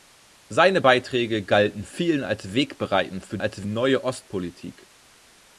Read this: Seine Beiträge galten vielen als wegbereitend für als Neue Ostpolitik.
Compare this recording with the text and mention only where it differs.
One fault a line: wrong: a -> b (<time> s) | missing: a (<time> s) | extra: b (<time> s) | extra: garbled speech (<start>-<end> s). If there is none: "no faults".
no faults